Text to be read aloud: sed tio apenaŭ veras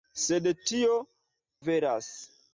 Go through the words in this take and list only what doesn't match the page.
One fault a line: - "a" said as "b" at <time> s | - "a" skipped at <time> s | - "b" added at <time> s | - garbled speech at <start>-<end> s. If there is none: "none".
- "apenaŭ" skipped at 0.9 s